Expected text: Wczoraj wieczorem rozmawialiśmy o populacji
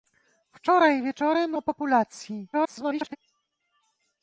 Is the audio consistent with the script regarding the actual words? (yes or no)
no